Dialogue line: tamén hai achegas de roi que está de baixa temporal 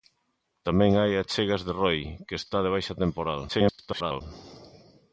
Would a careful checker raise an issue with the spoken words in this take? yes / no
yes